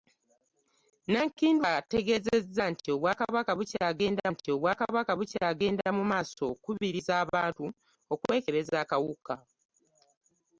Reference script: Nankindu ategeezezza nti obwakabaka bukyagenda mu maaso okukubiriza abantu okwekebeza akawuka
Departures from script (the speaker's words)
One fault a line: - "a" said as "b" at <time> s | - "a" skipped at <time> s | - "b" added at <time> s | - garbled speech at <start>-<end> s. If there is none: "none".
- "nti obwakabaka bukyagenda" added at 4.3 s